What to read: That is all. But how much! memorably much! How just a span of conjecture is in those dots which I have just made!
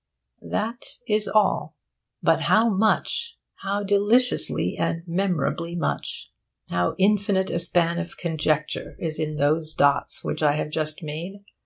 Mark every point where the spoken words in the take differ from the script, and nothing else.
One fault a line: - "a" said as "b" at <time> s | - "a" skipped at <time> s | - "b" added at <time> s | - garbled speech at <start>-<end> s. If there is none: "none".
- "how deliciously and" added at 3.6 s
- "just" said as "infinite" at 7.0 s